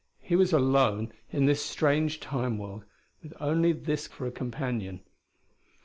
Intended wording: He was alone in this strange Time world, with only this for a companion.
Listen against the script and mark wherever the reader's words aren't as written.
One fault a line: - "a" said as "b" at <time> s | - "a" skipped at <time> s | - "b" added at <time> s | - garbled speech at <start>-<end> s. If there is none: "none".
none